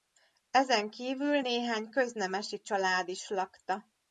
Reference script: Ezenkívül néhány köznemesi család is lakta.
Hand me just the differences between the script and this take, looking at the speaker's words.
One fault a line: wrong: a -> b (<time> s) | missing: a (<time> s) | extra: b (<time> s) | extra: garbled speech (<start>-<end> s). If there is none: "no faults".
no faults